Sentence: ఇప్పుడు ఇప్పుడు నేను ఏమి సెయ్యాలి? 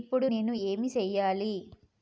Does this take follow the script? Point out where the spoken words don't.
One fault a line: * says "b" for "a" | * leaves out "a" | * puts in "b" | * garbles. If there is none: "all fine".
* leaves out "ఇప్పుడు"